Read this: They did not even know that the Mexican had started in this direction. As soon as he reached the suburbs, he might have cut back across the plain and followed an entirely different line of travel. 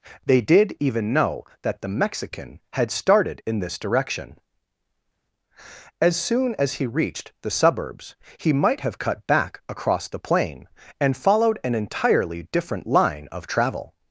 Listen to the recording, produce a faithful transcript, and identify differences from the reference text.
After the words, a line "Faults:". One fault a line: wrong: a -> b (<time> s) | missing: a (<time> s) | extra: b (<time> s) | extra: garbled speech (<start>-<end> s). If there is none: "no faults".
They did even know that the Mexican had started in this direction. As soon as he reached the suburbs, he might have cut back across the plain and followed an entirely different line of travel.
Faults:
missing: not (0.8 s)